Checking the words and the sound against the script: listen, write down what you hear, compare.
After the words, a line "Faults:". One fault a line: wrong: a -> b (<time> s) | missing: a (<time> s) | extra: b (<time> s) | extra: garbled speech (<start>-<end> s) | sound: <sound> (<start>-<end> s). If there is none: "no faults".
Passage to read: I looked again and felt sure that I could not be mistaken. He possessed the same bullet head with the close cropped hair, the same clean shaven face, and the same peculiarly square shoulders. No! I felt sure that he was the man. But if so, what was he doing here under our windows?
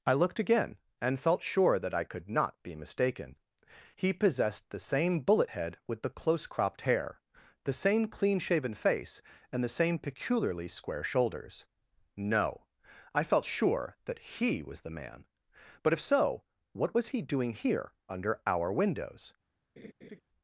I looked again and felt sure that I could not be mistaken. He possessed the same bullet head with the close cropped hair, the same clean shaven face, and the same peculiarly square shoulders. No! I felt sure that he was the man. But if so, what was he doing here under our windows?
Faults:
sound: laugh (19.8-20.2 s)